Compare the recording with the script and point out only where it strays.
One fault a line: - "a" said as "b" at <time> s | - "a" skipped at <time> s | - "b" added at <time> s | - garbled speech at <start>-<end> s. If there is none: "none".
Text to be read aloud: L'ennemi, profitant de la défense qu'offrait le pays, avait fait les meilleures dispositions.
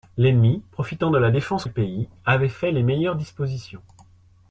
- "qu'offrait" skipped at 1.6 s